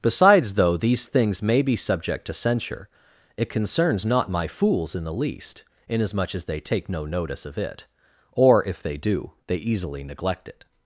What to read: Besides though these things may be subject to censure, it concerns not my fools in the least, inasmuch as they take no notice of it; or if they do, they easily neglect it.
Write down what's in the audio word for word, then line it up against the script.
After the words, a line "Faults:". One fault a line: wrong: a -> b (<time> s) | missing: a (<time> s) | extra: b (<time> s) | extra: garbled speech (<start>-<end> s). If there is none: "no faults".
Besides though these things may be subject to censure, it concerns not my fools in the least, inasmuch as they take no notice of it; or if they do, they easily neglect it.
Faults:
no faults